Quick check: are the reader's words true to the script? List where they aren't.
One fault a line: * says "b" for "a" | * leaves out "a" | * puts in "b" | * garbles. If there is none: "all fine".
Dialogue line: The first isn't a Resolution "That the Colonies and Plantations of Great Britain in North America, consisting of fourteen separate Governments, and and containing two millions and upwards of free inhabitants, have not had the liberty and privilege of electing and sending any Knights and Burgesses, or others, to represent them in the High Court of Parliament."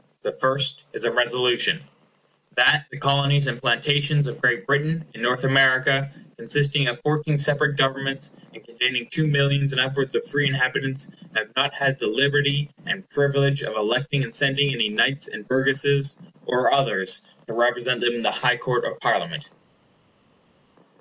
* says "is" for "isn't"
* leaves out "and"